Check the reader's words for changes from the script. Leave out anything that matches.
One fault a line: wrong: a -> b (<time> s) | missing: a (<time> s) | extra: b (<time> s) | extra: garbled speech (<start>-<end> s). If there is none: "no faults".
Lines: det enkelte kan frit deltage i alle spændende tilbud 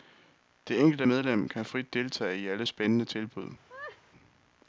extra: medlem (1.0 s)